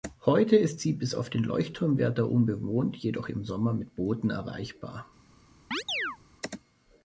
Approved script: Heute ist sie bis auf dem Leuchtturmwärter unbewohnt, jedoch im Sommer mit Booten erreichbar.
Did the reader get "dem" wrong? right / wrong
wrong